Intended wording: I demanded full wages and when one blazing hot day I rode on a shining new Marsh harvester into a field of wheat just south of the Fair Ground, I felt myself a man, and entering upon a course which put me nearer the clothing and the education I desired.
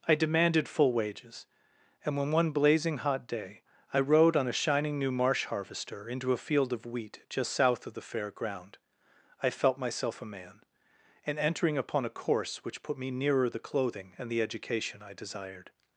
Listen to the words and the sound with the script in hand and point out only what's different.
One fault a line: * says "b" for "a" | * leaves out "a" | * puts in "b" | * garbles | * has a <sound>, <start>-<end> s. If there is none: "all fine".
all fine